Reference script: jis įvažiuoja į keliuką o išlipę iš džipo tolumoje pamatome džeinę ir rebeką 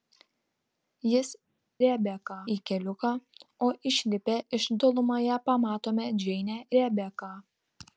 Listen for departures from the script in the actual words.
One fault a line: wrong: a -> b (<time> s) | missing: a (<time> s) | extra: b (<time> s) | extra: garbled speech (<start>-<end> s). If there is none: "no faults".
wrong: įvažiuoja -> rebeką (1.9 s)
missing: džipo (4.7 s)
missing: ir (6.6 s)